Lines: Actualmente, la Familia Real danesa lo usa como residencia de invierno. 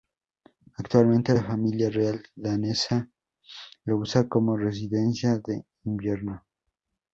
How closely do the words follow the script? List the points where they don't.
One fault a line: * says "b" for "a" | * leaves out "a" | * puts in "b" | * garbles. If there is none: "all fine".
all fine